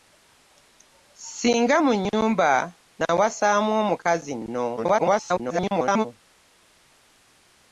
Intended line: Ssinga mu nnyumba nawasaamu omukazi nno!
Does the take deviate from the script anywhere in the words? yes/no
yes